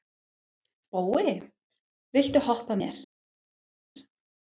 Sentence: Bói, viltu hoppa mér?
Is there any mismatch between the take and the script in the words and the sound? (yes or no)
no